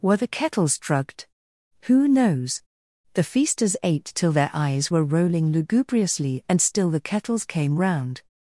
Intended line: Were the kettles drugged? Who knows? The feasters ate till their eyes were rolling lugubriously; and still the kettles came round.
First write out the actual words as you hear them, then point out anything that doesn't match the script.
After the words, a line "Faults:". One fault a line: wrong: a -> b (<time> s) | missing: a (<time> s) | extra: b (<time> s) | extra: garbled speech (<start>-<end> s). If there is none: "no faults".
Were the kettles drugged? Who knows? The feasters ate till their eyes were rolling lugubriously; and still the kettles came round.
Faults:
no faults